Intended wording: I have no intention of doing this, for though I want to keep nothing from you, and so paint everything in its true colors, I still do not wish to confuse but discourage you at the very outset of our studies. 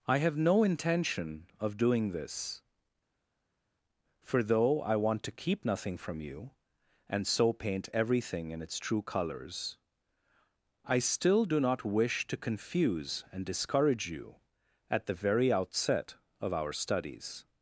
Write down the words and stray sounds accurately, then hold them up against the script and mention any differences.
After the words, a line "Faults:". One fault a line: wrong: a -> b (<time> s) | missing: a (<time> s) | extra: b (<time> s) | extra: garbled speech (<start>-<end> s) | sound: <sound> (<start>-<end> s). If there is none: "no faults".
I have no intention of doing this, for though I want to keep nothing from you, and so paint everything in its true colors, I still do not wish to confuse and discourage you at the very outset of our studies.
Faults:
wrong: but -> and (13.3 s)